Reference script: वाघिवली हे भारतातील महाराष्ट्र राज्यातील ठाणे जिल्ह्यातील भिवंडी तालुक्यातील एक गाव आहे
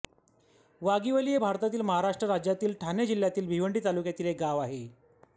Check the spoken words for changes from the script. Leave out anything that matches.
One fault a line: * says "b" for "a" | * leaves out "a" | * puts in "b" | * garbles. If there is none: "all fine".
all fine